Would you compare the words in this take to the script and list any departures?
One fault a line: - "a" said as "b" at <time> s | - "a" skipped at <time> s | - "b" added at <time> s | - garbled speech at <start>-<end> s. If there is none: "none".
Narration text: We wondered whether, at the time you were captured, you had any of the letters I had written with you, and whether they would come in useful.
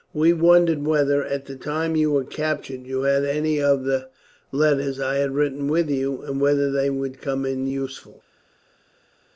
none